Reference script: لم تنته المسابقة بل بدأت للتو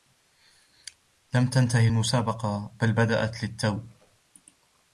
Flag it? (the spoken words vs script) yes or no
no